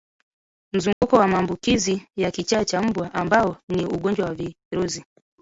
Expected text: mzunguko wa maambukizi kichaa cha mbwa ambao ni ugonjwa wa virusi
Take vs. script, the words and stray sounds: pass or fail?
fail